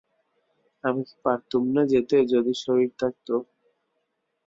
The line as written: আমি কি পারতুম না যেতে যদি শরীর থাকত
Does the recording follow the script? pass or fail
pass